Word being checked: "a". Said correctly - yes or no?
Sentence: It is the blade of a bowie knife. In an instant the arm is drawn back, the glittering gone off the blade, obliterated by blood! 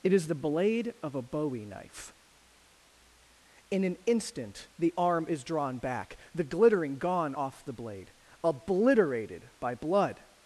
yes